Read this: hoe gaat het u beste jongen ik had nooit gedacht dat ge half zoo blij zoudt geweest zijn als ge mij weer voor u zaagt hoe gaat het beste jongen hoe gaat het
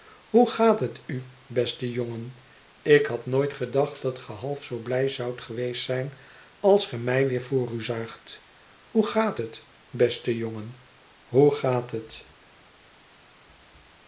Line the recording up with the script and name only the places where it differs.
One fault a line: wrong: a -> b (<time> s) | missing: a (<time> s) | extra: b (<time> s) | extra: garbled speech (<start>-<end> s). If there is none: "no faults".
no faults